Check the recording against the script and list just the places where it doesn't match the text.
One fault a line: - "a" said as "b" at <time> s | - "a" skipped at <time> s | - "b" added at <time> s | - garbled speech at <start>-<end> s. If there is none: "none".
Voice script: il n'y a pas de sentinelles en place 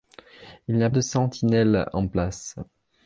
- "pas" skipped at 0.9 s